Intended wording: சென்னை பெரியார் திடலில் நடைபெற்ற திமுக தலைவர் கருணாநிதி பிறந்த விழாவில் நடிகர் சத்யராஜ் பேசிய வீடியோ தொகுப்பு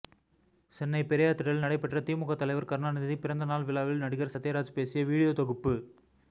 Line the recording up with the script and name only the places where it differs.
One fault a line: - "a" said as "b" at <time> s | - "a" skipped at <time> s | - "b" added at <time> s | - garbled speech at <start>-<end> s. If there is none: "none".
- "நாள்" added at 3.5 s